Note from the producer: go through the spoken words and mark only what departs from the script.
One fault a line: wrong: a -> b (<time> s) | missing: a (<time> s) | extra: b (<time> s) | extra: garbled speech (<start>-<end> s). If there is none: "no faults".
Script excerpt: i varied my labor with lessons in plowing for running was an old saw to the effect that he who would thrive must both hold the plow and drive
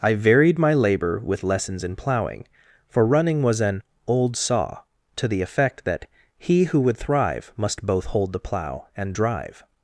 no faults